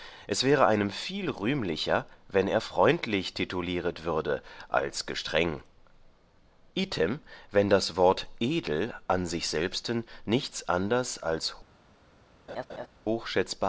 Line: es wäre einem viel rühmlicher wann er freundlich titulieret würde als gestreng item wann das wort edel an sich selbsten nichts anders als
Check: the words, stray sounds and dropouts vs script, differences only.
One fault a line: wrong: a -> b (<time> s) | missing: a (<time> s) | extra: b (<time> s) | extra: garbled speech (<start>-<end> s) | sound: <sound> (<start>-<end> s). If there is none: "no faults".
sound: laugh (12.5-12.9 s)